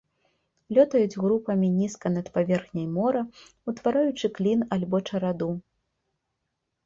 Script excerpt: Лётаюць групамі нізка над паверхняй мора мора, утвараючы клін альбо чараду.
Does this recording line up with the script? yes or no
no